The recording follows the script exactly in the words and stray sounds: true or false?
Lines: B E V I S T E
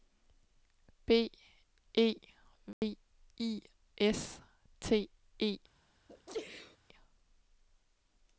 false